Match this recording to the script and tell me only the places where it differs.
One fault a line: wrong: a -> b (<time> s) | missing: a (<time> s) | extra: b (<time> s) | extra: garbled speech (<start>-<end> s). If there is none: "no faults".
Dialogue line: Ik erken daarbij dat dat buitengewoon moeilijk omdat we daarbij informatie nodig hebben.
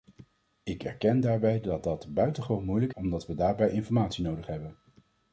no faults